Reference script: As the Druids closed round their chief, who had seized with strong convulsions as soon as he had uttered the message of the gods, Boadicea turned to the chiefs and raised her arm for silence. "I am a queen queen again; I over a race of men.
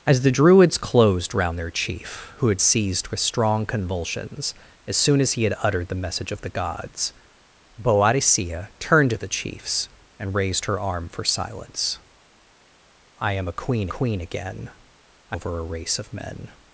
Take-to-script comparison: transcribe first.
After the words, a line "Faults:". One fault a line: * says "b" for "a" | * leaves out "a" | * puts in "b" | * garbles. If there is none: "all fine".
As the Druids closed round their chief, who had seized with strong convulsions as soon as he had uttered the message of the gods, Boadicea turned to the chiefs and raised her arm for silence. "I am a queen queen again; I over a race of men.
Faults:
all fine